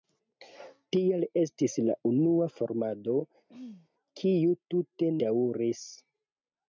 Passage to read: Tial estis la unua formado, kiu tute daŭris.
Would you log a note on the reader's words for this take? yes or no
no